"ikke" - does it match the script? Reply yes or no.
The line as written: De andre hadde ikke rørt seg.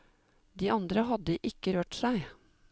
yes